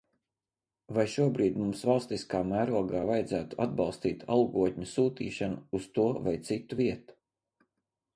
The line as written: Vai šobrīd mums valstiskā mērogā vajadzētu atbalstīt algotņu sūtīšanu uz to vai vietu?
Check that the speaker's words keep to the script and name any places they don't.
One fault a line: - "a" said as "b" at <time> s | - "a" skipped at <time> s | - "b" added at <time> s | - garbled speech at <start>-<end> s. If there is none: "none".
- "citu" added at 6.5 s